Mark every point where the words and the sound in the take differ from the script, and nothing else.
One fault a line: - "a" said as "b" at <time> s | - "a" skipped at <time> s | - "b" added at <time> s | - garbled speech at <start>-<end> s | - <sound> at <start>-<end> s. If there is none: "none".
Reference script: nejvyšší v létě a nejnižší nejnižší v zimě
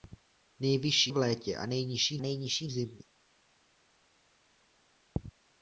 none